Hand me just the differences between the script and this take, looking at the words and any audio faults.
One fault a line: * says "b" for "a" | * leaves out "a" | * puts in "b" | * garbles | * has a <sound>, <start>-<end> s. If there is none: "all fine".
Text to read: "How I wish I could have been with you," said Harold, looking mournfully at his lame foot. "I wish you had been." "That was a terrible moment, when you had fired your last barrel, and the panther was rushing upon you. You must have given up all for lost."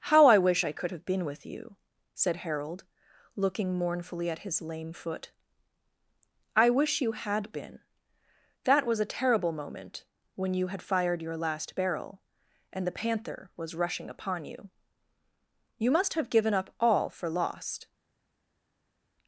all fine